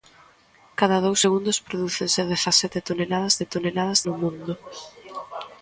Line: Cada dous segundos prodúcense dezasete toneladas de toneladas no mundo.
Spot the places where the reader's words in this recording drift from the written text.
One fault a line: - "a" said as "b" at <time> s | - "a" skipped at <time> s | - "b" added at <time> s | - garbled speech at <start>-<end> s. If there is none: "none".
none